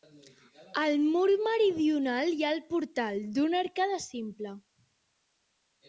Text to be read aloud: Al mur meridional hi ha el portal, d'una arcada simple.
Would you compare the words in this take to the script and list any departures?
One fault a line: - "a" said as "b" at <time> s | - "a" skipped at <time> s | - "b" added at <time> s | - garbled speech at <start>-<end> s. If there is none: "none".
none